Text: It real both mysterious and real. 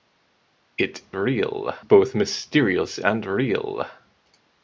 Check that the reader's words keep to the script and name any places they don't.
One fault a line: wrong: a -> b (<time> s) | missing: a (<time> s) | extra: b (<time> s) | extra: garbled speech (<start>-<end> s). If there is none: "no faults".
no faults